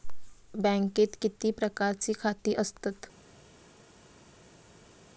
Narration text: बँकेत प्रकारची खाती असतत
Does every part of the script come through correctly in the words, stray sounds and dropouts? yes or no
no